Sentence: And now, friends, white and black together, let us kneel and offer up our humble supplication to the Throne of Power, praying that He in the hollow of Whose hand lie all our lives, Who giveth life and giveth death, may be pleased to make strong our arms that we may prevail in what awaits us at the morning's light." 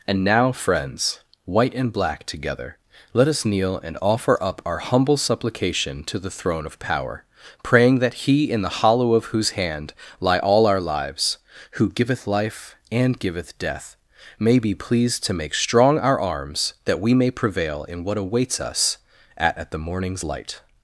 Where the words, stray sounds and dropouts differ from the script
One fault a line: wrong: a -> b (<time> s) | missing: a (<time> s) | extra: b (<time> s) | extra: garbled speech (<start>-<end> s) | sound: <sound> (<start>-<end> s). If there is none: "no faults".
extra: at (19.6 s)